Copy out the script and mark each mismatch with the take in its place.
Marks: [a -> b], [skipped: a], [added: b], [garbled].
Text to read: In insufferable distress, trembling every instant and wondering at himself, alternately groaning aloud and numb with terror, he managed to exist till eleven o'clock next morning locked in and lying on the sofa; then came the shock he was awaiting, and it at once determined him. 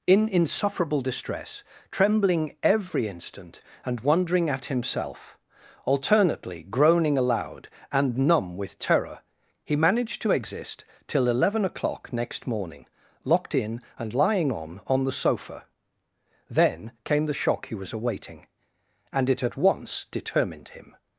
In insufferable distress, trembling every instant and wondering at himself, alternately groaning aloud and numb with terror, he managed to exist till eleven o'clock next morning locked in and lying on [added: on] the sofa; then came the shock he was awaiting, and it at once determined him.